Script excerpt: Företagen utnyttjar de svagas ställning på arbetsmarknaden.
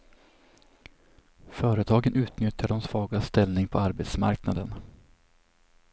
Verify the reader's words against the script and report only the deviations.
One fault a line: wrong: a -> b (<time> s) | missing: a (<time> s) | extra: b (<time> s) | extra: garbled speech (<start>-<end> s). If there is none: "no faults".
no faults